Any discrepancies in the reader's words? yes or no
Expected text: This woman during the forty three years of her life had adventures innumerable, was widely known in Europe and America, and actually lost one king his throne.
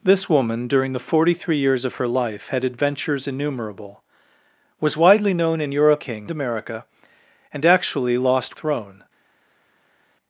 yes